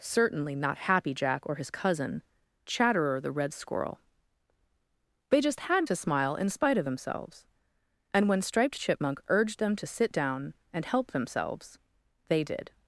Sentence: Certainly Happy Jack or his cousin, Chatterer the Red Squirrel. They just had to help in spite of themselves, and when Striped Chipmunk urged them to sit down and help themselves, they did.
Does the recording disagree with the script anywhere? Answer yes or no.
yes